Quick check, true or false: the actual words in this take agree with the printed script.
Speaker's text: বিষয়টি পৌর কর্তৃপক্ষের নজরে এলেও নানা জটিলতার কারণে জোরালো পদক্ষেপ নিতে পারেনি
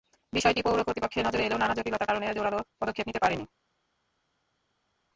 true